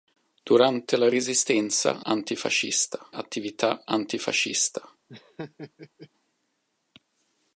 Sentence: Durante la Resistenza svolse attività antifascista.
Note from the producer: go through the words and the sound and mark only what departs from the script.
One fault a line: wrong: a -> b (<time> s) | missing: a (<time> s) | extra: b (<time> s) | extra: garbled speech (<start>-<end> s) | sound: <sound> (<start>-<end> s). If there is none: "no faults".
wrong: svolse -> antifascista (2.0 s)
sound: laugh (5.1-6.1 s)